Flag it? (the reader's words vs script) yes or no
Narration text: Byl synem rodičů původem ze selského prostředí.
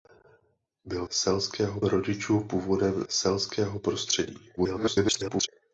yes